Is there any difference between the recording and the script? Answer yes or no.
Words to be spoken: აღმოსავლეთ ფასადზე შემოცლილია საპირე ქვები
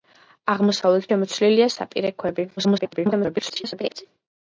yes